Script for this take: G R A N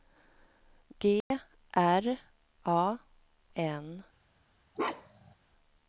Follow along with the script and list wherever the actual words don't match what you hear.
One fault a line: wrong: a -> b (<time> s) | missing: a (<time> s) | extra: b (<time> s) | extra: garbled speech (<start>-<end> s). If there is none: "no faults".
no faults